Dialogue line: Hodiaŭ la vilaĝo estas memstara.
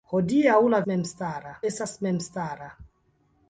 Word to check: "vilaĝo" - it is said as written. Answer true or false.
false